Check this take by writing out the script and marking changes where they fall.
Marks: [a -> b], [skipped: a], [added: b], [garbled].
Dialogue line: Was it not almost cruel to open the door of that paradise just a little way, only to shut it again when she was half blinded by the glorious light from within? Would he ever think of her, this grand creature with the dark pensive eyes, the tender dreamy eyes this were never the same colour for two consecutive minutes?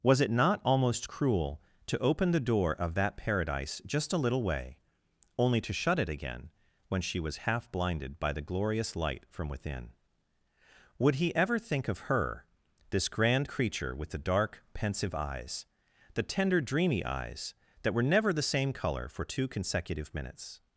Was it not almost cruel to open the door of that paradise just a little way, only to shut it again when she was half blinded by the glorious light from within? Would he ever think of her, this grand creature with the dark pensive eyes, the tender dreamy eyes [this -> that] were never the same colour for two consecutive minutes?